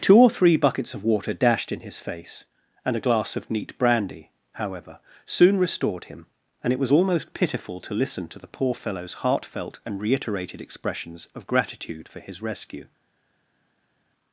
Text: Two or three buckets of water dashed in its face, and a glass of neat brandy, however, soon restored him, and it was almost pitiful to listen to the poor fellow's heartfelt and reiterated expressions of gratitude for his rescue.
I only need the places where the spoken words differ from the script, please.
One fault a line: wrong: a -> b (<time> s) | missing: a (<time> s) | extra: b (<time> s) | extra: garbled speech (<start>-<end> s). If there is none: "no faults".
wrong: its -> his (1.8 s)